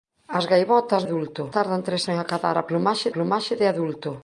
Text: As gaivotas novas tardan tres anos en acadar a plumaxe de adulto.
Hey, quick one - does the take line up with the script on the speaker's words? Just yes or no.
no